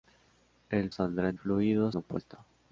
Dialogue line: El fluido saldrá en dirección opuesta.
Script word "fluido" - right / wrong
wrong